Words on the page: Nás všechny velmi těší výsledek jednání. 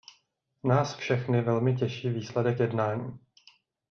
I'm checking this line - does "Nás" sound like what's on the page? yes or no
yes